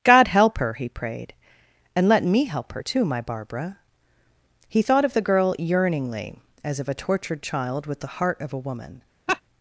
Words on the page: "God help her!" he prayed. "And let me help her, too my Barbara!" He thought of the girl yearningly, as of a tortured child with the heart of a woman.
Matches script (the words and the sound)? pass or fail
fail